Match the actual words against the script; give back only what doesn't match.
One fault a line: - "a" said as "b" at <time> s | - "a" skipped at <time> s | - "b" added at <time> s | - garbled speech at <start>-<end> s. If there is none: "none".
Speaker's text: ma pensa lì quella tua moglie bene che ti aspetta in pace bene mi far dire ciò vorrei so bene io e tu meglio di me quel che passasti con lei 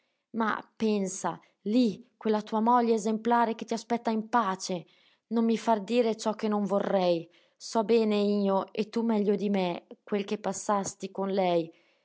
- "bene" said as "esemplare" at 2.9 s
- "bene" said as "non" at 5.3 s
- "che non" added at 6.3 s